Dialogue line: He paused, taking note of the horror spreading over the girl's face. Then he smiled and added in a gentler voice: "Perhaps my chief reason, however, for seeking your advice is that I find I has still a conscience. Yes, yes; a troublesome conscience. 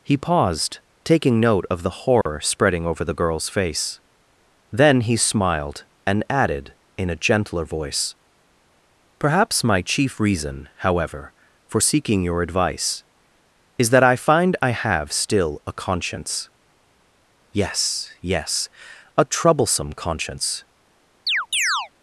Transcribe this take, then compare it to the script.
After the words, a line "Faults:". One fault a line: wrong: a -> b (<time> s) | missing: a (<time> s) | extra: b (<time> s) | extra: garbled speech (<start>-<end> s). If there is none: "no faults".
He paused, taking note of the horror spreading over the girl's face. Then he smiled and added in a gentler voice: "Perhaps my chief reason, however, for seeking your advice is that I find I have still a conscience. Yes, yes; a troublesome conscience.
Faults:
wrong: has -> have (14.7 s)